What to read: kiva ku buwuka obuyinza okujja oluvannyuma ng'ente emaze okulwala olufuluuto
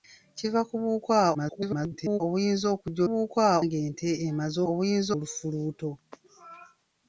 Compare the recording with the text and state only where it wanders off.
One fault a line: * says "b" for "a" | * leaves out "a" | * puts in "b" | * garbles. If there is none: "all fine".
* garbles
* says "buwuka" for "oluvannyuma"
* says "obuyinza" for "okulwala"